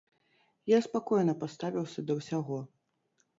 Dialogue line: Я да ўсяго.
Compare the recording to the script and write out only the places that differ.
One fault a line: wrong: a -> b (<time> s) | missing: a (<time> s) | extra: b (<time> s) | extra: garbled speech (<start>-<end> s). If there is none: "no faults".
extra: спакойна паставіўся (0.8 s)